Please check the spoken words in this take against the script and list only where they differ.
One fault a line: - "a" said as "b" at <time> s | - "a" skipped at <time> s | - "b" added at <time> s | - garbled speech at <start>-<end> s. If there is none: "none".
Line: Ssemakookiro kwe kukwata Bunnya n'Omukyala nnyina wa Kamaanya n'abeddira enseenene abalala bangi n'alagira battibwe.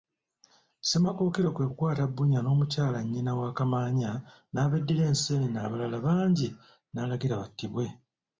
none